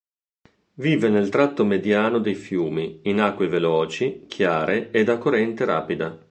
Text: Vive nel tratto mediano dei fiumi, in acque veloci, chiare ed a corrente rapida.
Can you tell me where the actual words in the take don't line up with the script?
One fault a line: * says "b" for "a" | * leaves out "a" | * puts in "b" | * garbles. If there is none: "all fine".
all fine